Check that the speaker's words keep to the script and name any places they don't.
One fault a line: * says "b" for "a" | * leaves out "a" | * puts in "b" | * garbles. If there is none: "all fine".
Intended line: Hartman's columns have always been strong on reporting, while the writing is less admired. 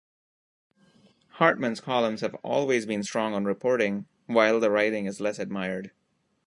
all fine